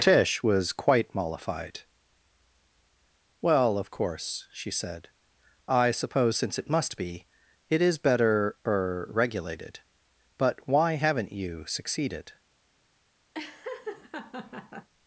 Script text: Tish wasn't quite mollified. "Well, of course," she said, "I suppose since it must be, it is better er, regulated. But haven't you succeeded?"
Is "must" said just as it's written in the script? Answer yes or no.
yes